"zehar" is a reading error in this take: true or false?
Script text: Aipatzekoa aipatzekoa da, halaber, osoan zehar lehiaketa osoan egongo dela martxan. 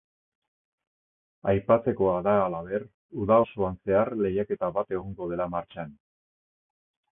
false